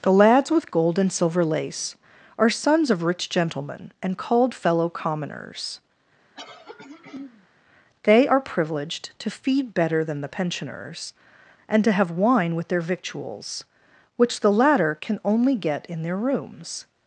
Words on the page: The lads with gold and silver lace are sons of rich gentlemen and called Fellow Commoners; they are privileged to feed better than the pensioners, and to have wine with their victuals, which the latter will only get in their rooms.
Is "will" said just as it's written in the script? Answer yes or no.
no